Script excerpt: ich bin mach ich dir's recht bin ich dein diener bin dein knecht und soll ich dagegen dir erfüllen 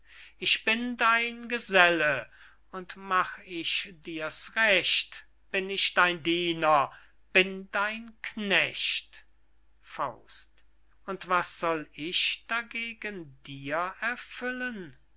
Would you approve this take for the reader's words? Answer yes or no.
no